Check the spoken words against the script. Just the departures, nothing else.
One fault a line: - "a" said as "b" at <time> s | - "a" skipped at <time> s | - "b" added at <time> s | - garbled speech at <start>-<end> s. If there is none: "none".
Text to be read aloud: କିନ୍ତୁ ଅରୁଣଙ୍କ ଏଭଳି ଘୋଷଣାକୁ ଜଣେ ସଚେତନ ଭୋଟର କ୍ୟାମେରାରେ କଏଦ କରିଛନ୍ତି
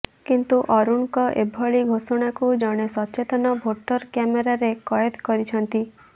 none